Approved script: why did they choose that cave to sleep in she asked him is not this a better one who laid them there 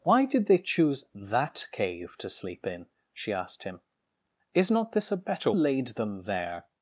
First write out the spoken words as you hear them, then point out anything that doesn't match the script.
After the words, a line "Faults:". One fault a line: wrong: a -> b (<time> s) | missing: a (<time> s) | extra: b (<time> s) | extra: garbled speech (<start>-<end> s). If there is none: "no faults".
why did they choose that cave to sleep in she asked him is not this a better laid them there
Faults:
missing: one who (5.5 s)